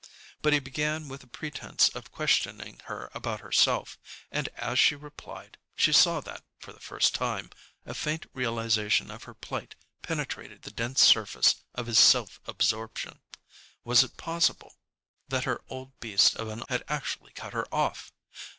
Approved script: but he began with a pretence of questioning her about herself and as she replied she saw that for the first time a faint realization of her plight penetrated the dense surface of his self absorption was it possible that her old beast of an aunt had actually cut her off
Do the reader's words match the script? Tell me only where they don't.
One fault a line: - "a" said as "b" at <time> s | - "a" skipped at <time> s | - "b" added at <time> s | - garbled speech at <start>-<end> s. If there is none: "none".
- "aunt" skipped at 16.6 s